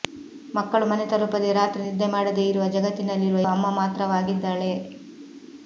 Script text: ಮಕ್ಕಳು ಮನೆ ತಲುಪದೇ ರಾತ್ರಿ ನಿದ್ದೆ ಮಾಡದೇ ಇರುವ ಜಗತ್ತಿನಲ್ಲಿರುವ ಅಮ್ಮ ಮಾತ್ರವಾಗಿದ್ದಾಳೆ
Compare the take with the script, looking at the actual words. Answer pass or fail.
pass